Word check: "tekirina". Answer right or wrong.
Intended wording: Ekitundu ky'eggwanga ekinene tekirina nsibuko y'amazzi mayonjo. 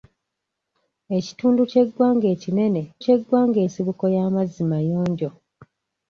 wrong